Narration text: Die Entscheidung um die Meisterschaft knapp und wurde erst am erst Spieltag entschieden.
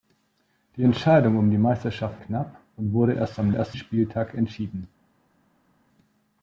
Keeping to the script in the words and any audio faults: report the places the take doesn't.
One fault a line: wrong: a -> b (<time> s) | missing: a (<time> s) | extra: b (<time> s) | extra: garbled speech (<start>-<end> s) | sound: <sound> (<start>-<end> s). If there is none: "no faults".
no faults